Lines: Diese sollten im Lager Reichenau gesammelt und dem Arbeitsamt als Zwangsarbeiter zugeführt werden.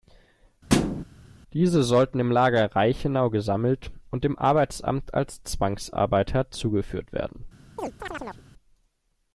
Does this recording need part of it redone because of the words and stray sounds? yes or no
yes